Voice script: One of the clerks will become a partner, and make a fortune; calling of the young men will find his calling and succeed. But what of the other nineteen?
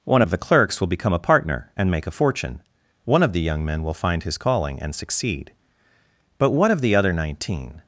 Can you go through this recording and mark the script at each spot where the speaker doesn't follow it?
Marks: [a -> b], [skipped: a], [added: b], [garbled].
One of the clerks will become a partner, and make a fortune; [calling -> one] of the young men will find his calling and succeed. But what of the other nineteen?